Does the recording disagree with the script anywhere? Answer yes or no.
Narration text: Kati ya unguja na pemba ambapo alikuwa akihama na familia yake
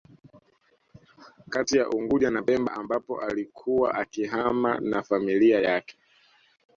no